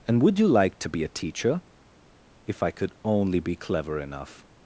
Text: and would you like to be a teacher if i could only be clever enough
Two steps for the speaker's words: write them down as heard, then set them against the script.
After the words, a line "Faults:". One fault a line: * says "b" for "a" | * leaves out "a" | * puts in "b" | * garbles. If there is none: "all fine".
and would you like to be a teacher if i could only be clever enough
Faults:
all fine